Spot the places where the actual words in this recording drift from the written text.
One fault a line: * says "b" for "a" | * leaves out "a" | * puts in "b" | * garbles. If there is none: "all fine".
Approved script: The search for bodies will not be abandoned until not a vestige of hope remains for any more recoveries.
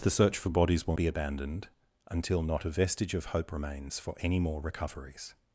* leaves out "not"